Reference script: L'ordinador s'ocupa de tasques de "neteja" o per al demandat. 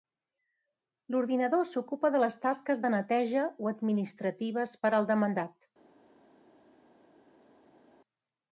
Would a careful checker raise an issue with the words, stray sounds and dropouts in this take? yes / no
yes